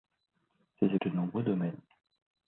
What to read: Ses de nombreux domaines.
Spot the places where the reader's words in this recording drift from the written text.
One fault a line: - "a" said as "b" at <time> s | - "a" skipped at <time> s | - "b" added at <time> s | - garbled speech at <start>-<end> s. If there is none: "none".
none